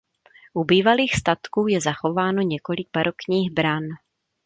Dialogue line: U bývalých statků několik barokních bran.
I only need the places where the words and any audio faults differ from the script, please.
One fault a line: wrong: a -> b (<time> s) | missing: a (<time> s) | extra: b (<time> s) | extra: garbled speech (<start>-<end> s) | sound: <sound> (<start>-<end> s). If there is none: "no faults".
extra: je zachováno (1.7 s)